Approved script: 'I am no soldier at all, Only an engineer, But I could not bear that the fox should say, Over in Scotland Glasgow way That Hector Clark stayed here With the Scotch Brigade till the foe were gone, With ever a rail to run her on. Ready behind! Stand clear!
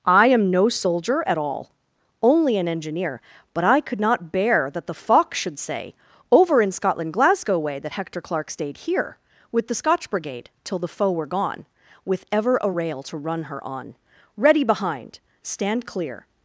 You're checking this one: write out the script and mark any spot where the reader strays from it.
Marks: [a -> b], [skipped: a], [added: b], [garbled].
'I am no soldier at all, Only an engineer, But I could not bear that the fox should say, Over in Scotland Glasgow way That Hector Clark stayed here With the Scotch Brigade till the foe were gone, With ever a rail to run her on. Ready behind! Stand clear!